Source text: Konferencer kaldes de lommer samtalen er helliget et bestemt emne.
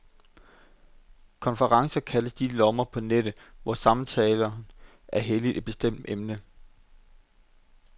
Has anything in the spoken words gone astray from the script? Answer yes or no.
yes